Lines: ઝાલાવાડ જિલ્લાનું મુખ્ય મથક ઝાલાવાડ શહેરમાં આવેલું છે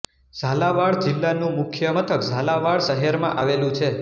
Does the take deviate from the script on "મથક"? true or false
false